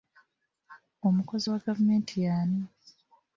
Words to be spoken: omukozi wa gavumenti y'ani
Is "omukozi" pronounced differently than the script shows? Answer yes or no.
no